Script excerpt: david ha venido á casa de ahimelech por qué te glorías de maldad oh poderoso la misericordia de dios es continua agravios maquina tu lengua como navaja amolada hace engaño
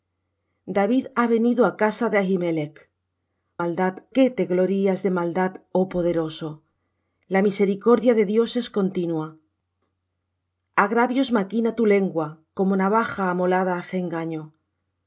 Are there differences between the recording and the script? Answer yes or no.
yes